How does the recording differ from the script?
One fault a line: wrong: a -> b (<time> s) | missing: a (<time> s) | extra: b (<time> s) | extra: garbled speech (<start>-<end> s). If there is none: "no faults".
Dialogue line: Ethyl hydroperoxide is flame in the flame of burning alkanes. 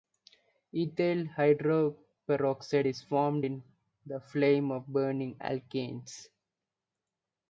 wrong: flame -> formed (3.0 s)